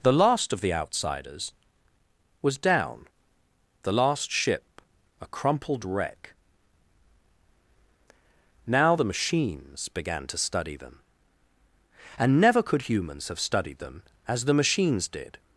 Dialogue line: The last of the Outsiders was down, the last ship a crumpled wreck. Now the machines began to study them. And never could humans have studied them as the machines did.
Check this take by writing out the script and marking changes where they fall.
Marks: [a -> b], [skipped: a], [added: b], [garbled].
The last of the Outsiders was down, the last ship a crumpled wreck. Now the machines began to study them. And never could humans have studied them as the machines did.